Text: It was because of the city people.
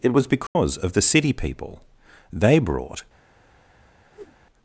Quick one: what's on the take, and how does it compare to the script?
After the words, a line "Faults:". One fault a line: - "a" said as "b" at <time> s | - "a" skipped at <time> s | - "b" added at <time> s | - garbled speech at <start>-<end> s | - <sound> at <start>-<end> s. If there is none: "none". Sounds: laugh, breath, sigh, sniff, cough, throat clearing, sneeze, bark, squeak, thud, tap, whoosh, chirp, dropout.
It was because of the city people. They brought
Faults:
- dropout at 0.5-0.6 s
- "They brought" added at 2.3 s
- whoosh at 4.1-4.4 s